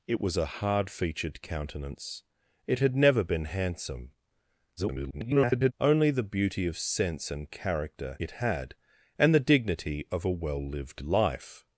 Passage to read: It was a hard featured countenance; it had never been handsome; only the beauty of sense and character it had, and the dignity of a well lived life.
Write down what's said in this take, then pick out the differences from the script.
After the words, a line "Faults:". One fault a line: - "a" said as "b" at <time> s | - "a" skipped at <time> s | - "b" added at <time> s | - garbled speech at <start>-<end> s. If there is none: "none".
It was a hard featured countenance; it had never been handsome; [garbled] only the beauty of sense and character it had, and the dignity of a well lived life.
Faults:
- garbled speech at 4.8-5.7 s